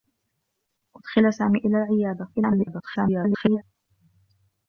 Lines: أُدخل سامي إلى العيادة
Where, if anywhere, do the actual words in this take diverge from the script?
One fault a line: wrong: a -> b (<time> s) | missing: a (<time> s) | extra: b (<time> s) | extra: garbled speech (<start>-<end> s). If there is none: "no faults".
extra: garbled speech (2.3-3.6 s)